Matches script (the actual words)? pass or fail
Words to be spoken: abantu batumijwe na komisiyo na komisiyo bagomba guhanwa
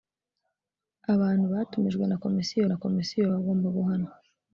pass